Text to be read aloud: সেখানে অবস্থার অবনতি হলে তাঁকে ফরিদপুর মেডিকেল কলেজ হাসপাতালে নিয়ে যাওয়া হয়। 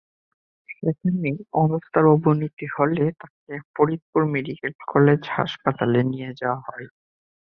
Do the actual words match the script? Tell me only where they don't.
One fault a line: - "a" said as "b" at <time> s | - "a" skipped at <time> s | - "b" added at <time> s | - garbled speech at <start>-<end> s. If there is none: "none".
none